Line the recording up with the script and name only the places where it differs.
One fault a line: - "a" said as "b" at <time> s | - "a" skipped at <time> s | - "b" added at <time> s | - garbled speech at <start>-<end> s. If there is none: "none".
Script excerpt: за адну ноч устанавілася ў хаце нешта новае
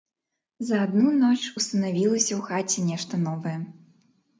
none